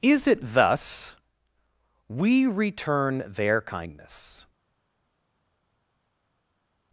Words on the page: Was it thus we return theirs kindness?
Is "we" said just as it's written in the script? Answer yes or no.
yes